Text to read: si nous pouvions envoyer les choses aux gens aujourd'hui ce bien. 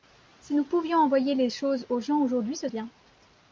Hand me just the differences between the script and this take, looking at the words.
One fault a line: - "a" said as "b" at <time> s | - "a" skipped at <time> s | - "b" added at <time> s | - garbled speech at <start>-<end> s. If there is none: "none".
none